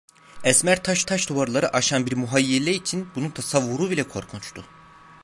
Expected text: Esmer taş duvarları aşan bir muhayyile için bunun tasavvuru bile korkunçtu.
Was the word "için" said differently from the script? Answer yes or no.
no